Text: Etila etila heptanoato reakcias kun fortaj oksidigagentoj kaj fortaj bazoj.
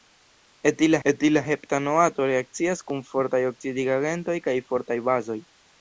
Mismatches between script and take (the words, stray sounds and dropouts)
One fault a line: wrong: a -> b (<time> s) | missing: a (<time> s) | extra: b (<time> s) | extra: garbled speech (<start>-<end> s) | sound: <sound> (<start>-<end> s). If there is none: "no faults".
no faults